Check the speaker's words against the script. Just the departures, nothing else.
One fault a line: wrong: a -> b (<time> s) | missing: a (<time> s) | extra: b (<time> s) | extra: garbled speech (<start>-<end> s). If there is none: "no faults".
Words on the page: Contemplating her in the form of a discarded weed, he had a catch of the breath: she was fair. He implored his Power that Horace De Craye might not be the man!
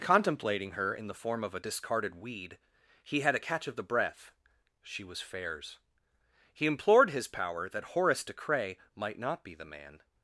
wrong: fair -> fairs (5.2 s)